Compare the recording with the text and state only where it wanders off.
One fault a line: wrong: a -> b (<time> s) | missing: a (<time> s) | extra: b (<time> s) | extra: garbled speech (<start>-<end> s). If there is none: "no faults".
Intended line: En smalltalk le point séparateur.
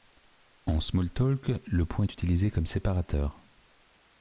extra: est utilisé comme (2.0 s)